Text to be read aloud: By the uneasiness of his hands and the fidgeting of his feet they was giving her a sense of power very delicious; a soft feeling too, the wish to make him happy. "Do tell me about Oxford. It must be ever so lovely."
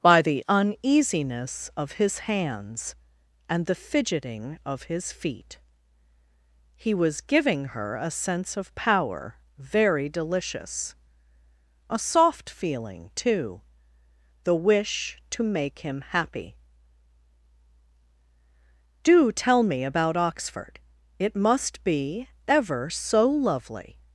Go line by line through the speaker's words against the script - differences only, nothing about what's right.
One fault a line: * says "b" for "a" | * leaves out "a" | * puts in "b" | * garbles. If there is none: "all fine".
* says "he" for "they"